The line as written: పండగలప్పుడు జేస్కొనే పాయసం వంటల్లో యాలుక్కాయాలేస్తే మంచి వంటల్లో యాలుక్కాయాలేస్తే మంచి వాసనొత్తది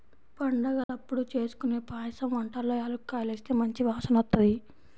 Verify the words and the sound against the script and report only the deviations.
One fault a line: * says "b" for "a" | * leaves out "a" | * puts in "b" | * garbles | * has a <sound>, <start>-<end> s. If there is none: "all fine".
* has a dropout, 0.8-0.9 s
* leaves out "వంటల్లో యాలుక్కాయాలేస్తే మంచి"